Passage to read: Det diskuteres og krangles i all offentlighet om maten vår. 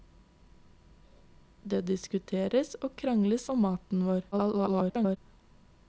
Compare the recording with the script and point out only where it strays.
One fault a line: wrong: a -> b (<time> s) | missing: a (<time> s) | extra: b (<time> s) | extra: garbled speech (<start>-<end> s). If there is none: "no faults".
missing: i all offentlighet (3.5 s)
extra: garbled speech (4.3-5.2 s)